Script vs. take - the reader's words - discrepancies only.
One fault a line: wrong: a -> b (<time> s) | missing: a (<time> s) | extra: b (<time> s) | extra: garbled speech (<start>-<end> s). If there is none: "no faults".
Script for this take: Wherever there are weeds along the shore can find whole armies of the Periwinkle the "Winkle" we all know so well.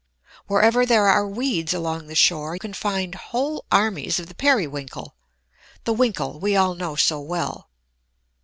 no faults